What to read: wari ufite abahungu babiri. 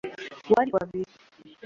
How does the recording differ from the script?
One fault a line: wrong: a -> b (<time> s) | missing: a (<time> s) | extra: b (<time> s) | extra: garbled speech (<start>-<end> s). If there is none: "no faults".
missing: ufite abahungu (0.7 s)